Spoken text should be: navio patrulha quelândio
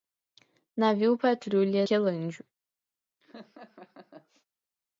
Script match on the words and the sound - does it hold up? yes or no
no